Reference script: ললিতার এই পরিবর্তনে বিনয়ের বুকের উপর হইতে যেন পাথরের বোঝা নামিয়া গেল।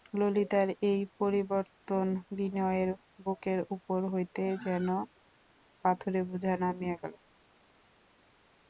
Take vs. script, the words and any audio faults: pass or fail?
pass